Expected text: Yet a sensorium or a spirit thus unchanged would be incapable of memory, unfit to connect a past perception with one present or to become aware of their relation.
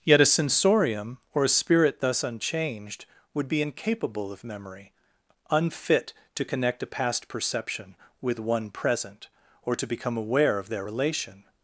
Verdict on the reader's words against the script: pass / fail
pass